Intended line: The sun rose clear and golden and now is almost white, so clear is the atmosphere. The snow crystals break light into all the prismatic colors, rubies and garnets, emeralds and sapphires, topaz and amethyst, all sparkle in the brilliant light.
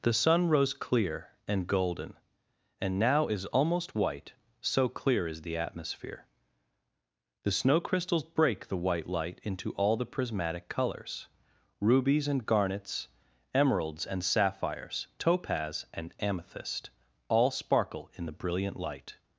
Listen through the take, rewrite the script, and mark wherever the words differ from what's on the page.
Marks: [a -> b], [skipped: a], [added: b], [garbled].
The sun rose clear and golden and now is almost white, so clear is the atmosphere. The snow crystals break [added: the white] light into all the prismatic colors, rubies and garnets, emeralds and sapphires, topaz and amethyst, all sparkle in the brilliant light.